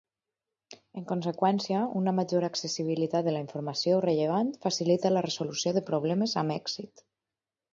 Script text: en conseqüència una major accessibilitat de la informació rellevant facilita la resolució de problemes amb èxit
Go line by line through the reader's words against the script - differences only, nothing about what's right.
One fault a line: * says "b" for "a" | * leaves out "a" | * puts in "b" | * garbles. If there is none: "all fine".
all fine